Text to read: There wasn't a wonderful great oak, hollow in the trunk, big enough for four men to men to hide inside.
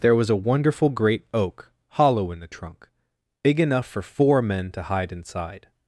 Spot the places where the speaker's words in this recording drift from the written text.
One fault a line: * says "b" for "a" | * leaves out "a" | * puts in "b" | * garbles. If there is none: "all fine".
* says "was" for "wasn't"
* leaves out "men to"